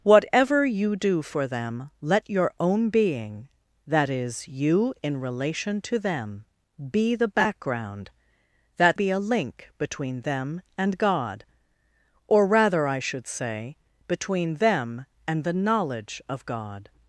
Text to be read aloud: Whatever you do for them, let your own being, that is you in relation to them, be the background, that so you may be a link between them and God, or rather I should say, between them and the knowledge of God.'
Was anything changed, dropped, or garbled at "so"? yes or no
yes